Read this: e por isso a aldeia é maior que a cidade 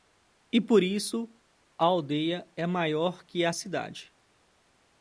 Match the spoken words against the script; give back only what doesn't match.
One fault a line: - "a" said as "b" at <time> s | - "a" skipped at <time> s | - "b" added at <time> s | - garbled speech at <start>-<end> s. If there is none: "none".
none